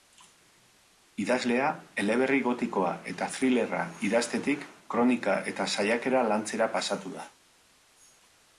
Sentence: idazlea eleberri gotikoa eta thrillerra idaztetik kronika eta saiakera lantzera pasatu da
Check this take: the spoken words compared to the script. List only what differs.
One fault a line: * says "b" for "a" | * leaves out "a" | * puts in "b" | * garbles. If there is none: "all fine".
all fine